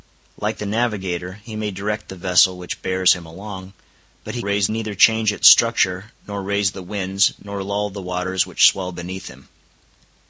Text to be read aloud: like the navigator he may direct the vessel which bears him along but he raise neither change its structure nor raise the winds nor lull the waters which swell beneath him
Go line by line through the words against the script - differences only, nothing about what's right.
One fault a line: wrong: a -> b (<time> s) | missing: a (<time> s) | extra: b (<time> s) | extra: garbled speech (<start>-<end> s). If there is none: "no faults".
no faults